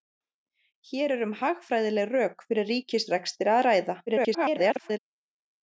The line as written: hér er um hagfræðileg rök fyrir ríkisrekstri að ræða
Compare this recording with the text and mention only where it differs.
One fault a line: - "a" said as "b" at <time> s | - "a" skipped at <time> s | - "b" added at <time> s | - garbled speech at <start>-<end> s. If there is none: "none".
- garbled speech at 4.1-5.0 s